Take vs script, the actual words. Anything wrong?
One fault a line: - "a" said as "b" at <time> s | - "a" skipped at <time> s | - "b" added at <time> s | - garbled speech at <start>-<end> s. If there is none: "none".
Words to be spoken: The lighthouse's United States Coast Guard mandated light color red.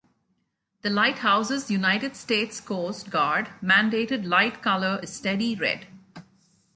- "is steady" added at 5.0 s